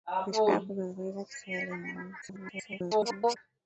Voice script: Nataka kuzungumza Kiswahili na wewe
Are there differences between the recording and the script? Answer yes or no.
yes